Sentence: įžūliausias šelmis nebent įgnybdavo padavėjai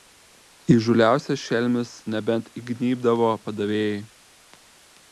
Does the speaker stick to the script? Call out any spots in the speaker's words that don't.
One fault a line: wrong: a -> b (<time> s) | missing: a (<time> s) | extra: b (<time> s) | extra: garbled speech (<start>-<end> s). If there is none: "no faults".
no faults